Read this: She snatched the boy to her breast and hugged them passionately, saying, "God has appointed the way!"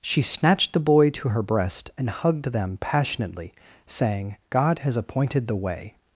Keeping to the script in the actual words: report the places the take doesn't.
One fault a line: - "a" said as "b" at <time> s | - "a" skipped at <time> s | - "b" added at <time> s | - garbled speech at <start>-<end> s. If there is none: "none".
none